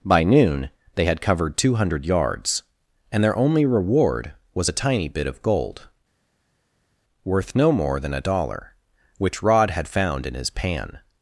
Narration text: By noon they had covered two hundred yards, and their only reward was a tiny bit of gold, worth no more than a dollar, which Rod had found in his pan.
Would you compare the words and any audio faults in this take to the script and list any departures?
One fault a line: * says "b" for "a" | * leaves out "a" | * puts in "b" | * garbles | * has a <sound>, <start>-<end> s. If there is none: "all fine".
all fine